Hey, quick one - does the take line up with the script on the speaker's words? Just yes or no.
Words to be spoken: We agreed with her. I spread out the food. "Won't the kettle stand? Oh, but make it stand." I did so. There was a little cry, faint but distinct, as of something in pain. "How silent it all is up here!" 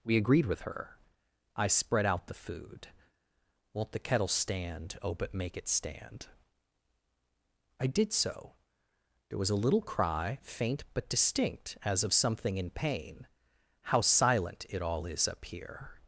yes